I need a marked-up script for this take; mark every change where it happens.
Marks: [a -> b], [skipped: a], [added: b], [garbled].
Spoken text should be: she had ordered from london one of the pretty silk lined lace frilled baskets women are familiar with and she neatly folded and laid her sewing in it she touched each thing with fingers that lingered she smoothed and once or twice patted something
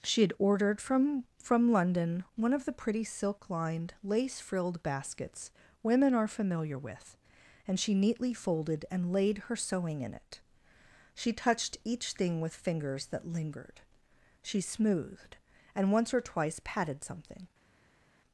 she had ordered from [added: from] london one of the pretty silk lined lace frilled baskets women are familiar with and she neatly folded and laid her sewing in it she touched each thing with fingers that lingered she smoothed and once or twice patted something